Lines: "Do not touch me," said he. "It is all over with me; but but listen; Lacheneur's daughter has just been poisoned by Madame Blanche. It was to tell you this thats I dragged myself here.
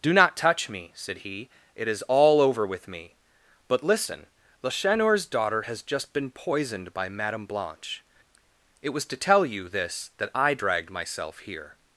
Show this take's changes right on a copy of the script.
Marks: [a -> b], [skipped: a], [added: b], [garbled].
"Do not touch me," said he. "It is all over with me; but [skipped: but] listen; Lacheneur's daughter has just been poisoned by Madame Blanche. It was to tell you this [thats -> that] I dragged myself here.